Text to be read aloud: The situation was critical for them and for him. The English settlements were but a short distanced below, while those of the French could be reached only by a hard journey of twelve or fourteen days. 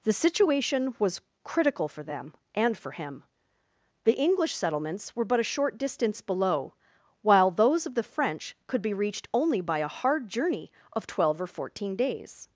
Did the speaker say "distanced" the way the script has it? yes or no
no